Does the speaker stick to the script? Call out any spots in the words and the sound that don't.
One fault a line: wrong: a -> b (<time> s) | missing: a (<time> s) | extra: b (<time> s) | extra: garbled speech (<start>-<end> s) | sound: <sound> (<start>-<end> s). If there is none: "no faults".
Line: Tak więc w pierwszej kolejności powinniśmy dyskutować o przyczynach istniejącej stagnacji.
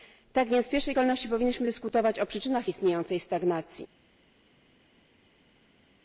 no faults